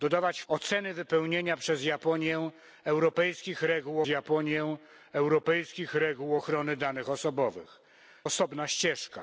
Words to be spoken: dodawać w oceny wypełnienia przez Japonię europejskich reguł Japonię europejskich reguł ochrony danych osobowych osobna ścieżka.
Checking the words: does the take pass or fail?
pass